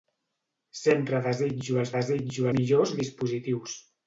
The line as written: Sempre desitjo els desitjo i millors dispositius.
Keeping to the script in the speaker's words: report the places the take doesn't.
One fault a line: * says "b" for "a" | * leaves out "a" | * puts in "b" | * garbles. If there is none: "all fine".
all fine